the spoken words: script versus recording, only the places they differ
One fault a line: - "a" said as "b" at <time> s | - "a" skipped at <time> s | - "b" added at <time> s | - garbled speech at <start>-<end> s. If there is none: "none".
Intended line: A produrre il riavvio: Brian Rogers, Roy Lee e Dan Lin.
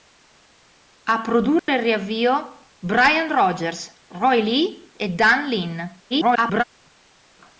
- garbled speech at 6.1-6.6 s